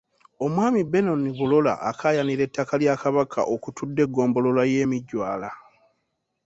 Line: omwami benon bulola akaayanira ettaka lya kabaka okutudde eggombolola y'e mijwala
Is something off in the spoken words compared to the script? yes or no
no